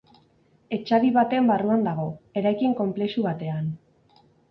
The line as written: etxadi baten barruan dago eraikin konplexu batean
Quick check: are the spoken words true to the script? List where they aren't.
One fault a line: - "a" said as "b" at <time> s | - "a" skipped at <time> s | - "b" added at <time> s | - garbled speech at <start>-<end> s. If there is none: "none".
none